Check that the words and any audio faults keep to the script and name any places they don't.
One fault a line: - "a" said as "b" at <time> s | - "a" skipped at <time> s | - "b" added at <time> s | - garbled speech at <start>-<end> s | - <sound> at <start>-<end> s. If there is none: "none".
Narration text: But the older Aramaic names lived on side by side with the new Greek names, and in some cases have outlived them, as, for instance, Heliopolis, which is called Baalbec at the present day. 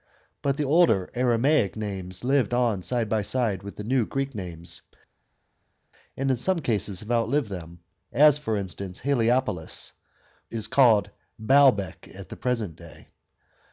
- "which" skipped at 9.9 s